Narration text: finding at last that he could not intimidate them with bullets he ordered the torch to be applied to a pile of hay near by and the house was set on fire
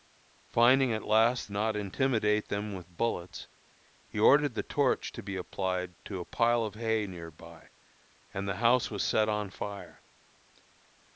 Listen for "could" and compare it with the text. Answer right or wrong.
wrong